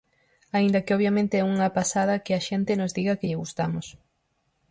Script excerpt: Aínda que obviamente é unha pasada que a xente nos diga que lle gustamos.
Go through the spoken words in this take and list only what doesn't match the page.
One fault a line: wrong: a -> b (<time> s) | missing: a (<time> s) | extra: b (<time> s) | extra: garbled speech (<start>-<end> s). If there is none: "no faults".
no faults